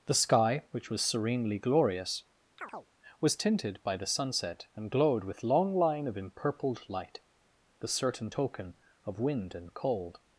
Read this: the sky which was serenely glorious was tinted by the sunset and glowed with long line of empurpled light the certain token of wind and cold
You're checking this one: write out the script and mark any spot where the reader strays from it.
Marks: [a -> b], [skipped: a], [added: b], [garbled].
the sky which was serenely glorious was tinted by the sunset and glowed with long line of empurpled light the certain token of wind and cold